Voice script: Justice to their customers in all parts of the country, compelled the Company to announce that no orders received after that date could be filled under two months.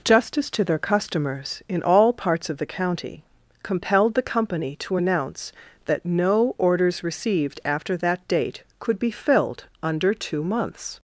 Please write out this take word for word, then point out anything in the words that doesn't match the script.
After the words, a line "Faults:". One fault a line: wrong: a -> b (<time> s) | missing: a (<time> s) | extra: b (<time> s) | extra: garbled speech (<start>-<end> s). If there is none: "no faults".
Justice to their customers in all parts of the county, compelled the Company to announce that no orders received after that date could be filled under two months.
Faults:
wrong: country -> county (2.7 s)